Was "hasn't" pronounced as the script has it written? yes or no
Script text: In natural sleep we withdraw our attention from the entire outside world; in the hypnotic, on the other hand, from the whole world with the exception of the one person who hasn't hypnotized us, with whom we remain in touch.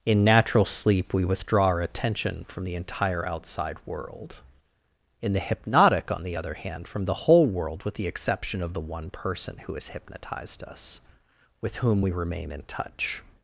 no